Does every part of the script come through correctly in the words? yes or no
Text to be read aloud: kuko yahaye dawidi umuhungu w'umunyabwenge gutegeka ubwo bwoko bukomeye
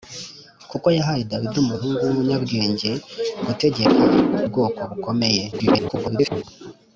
no